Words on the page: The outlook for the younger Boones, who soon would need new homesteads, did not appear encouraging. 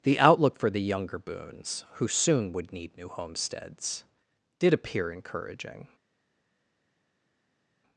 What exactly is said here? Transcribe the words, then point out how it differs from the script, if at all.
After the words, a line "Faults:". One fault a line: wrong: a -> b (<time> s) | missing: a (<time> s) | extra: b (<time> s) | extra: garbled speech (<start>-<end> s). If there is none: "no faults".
The outlook for the younger Boones, who soon would need new homesteads, did appear encouraging.
Faults:
missing: not (4.7 s)